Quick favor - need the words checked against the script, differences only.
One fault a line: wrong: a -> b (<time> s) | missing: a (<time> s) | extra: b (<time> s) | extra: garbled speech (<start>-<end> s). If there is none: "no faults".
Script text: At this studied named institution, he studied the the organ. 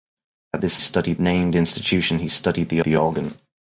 no faults